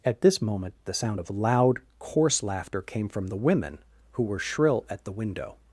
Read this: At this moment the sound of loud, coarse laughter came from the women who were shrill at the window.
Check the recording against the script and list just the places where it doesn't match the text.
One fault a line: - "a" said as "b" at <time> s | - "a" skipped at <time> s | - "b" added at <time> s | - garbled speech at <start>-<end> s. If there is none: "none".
none